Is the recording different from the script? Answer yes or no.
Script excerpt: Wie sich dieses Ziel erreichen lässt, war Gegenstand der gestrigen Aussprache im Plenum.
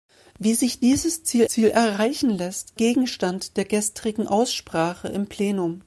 yes